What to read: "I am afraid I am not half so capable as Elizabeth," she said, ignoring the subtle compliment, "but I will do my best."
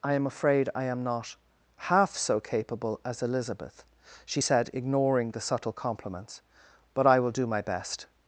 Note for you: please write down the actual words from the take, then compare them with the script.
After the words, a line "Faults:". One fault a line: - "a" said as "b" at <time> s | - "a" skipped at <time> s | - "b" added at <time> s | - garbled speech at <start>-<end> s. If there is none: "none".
"I am afraid I am not half so capable as Elizabeth," she said, ignoring the subtle compliments, "but I will do my best."
Faults:
- "compliment" said as "compliments" at 5.7 s